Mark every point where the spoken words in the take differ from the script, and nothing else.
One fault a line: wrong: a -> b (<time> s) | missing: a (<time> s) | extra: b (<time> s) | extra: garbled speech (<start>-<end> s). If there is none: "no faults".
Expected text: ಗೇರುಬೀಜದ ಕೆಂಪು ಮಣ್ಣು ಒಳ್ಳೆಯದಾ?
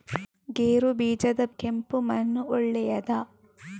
no faults